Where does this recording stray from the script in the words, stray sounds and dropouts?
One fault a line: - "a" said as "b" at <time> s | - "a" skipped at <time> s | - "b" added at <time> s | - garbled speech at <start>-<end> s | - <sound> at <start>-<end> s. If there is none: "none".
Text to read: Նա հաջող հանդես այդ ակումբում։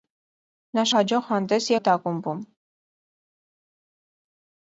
none